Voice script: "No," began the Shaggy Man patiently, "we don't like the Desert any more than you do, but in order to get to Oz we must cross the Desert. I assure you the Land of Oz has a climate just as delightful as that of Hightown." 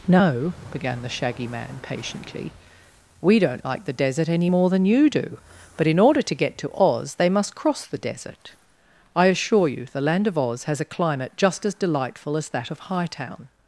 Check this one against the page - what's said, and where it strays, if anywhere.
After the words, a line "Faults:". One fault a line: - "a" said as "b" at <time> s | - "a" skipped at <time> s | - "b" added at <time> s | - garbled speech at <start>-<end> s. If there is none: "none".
"No," began the Shaggy Man patiently, "we don't like the Desert any more than you do, but in order to get to Oz they must cross the Desert. I assure you the Land of Oz has a climate just as delightful as that of Hightown."
Faults:
- "we" said as "they" at 7.1 s